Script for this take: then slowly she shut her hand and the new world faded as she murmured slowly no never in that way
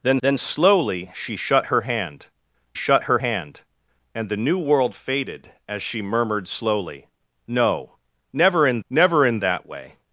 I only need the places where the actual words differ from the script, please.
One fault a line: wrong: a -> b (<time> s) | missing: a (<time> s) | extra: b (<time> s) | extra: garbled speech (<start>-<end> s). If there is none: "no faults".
extra: then (0.2 s)
extra: shut her hand (2.7 s)
extra: never in (8.9 s)